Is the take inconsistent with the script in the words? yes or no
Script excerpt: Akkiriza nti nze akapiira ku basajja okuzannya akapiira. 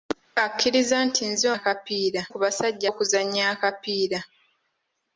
no